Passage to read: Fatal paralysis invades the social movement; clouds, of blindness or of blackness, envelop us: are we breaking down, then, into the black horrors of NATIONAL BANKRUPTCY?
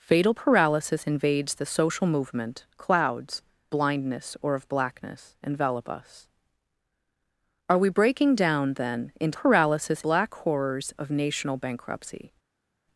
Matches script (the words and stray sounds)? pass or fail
fail